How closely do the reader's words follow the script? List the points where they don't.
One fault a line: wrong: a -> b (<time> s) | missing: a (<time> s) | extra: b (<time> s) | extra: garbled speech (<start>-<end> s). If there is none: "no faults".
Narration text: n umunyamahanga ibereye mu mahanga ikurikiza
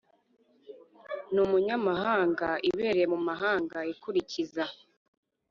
no faults